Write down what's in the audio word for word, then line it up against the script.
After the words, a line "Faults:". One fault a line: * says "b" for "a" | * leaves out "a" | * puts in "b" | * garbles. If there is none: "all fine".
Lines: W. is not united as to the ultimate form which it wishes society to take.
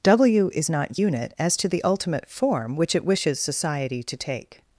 W. is not unit as to the ultimate form which it wishes society to take.
Faults:
* says "unit" for "united"